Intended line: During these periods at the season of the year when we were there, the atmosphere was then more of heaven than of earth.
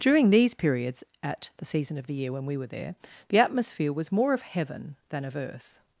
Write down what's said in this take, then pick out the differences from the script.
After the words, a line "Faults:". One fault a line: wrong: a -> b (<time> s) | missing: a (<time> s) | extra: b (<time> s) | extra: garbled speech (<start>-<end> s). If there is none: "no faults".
During these periods at the season of the year when we were there, the atmosphere was more of heaven than of earth.
Faults:
missing: then (4.1 s)